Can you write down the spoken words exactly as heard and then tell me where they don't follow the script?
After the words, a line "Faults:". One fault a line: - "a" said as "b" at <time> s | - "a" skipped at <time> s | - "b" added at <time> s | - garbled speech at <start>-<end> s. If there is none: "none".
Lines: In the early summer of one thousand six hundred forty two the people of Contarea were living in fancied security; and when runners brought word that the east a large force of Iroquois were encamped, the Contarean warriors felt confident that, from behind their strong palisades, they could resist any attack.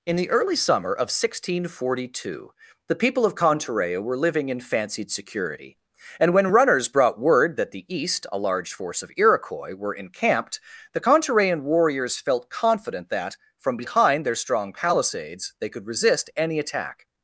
In the early summer of one thousand six hundred forty two the people of Contarea were living in fancied security; and when runners brought word that the east a large force of Iroquois were encamped, the Contarean warriors felt confident that, from behind their strong palisades, they could resist any attack.
Faults:
none